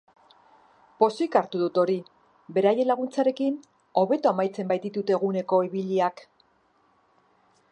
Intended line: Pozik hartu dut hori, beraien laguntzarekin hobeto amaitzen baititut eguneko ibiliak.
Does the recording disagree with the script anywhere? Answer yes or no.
no